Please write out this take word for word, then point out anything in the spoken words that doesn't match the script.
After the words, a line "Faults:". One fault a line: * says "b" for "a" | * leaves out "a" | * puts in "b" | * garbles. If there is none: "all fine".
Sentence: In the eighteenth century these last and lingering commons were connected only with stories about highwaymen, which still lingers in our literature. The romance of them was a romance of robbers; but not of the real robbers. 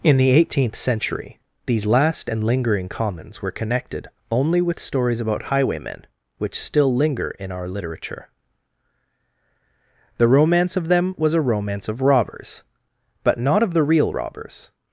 In the eighteenth century these last and lingering commons were connected only with stories about highwaymen, which still linger in our literature. The romance of them was a romance of robbers; but not of the real robbers.
Faults:
* says "linger" for "lingers"